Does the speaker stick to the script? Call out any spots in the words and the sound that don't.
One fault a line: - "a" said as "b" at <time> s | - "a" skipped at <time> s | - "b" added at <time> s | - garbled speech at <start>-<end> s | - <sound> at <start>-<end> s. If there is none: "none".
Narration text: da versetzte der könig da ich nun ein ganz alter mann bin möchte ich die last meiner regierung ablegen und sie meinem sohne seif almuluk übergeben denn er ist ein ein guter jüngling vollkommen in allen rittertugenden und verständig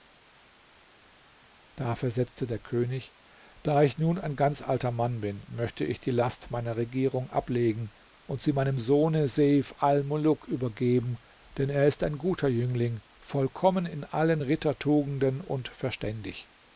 - "ein" skipped at 12.2 s